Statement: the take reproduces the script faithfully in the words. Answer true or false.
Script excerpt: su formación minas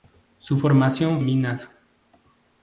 true